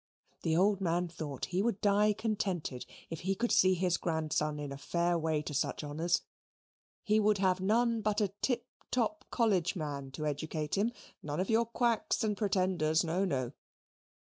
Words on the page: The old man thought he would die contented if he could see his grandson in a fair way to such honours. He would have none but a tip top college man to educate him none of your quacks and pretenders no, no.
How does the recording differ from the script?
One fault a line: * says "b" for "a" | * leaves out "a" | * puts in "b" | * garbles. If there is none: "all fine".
all fine